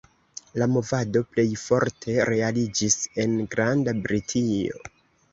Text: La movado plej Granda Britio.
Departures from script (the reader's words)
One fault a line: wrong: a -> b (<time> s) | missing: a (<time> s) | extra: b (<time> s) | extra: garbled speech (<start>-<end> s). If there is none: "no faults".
extra: forte realiĝis en (1.6 s)